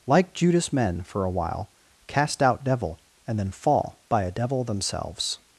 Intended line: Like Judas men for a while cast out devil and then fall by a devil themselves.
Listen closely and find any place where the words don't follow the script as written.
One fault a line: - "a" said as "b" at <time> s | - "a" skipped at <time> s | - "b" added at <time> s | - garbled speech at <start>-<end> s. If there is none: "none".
none